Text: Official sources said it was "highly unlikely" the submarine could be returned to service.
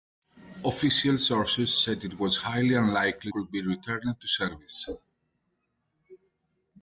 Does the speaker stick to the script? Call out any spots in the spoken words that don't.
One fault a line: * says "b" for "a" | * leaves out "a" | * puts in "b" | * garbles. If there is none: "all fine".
* leaves out "the submarine"